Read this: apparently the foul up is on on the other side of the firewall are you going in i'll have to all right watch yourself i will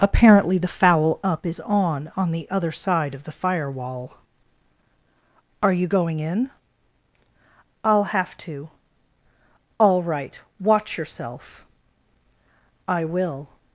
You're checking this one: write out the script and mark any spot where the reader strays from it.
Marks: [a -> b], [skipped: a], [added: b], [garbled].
apparently the foul up is on on the other side of the firewall are you going in i'll have to all right watch yourself i will